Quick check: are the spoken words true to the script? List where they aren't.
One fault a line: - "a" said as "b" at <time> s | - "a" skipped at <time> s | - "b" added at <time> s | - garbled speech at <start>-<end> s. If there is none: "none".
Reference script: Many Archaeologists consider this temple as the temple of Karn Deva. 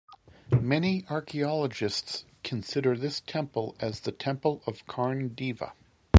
none